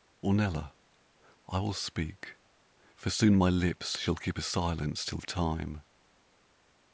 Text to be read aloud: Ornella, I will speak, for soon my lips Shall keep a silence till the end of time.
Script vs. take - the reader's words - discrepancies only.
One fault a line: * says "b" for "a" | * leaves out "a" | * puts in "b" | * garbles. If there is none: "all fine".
* leaves out "the end"